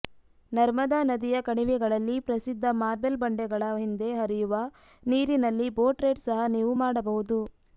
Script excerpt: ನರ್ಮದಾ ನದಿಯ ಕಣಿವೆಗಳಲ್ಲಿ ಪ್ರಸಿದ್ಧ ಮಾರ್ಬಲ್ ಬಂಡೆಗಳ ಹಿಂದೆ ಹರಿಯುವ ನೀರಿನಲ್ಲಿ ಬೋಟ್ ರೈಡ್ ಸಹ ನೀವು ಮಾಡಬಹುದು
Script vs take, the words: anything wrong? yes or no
no